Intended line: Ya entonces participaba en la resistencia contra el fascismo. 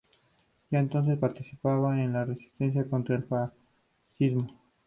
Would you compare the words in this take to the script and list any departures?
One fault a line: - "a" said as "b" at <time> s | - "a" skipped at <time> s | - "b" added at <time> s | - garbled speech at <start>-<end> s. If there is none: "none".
none